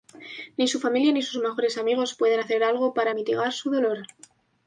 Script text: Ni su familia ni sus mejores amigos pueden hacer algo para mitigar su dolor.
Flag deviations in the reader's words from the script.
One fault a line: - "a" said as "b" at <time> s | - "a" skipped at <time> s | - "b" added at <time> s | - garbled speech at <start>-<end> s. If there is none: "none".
none